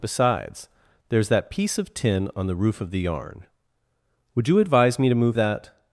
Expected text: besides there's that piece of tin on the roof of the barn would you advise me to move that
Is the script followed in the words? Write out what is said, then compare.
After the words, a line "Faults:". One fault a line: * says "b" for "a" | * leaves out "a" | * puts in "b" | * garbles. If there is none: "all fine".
besides there's that piece of tin on the roof of the yarn would you advise me to move that
Faults:
* says "yarn" for "barn"